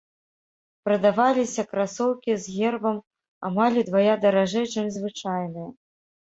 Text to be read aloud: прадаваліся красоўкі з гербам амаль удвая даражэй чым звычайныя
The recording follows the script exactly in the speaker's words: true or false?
true